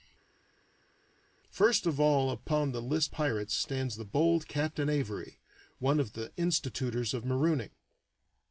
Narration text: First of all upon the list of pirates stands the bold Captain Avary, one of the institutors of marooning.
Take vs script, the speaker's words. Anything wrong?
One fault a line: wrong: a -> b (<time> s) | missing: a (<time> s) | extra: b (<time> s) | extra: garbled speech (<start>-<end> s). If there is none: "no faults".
missing: of (3.1 s)